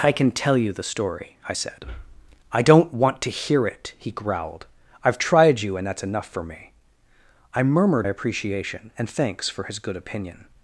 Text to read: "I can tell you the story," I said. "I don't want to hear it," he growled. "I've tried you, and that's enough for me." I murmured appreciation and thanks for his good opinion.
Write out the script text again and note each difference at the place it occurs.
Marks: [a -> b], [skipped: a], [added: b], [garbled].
"I can tell you the story," I said. "I don't want to hear it," he growled. "I've tried you, and that's enough for me." I murmured appreciation and thanks for his good opinion.